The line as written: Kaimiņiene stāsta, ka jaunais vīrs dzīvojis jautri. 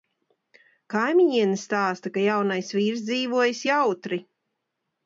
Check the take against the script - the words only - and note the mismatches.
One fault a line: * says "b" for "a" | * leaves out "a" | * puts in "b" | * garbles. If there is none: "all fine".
all fine